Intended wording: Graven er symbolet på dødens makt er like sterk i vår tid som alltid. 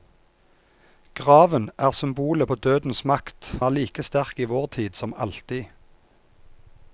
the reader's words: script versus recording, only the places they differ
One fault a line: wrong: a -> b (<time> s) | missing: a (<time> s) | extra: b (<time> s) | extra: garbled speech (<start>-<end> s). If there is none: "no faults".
no faults